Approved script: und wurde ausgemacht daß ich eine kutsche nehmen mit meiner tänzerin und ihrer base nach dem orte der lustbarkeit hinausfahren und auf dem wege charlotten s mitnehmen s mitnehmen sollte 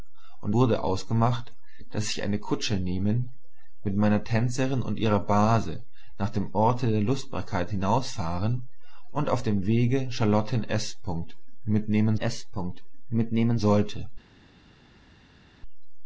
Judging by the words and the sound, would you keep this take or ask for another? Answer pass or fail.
pass